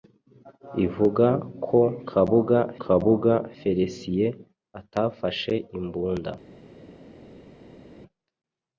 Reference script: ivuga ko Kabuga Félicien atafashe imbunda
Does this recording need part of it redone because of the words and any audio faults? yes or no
yes